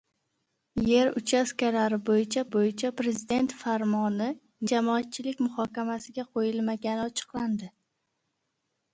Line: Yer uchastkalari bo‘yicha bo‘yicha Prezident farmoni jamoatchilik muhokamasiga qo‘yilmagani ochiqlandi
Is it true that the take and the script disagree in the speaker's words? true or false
false